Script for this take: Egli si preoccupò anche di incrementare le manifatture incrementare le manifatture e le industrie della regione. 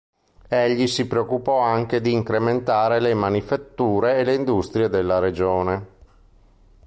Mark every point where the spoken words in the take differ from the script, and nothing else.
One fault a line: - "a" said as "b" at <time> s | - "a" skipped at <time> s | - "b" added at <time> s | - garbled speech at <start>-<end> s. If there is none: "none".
- "incrementare le manifatture" skipped at 4.2 s